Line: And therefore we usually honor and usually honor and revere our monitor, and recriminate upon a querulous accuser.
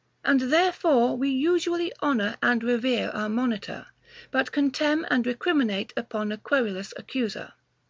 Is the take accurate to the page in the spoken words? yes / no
no